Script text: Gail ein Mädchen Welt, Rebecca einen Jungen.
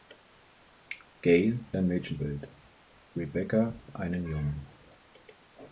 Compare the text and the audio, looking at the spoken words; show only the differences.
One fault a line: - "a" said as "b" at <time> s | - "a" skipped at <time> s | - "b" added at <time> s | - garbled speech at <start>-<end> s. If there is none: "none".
none